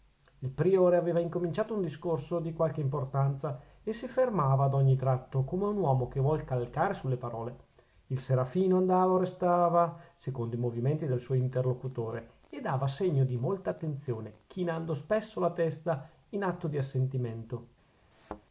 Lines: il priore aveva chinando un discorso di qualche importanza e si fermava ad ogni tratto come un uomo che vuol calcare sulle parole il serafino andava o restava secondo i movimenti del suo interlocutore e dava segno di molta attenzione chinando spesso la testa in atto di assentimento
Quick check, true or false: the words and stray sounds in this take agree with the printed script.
false